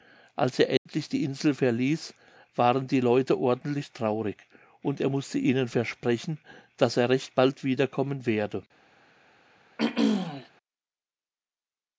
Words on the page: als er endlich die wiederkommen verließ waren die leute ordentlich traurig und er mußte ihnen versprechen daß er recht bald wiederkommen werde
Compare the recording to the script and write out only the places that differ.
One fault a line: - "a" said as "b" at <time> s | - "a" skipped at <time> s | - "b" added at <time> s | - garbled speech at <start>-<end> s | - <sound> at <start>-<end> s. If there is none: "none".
- dropout at 0.8-0.9 s
- "wiederkommen" said as "insel" at 1.2 s
- throat clearing at 9.8-10.5 s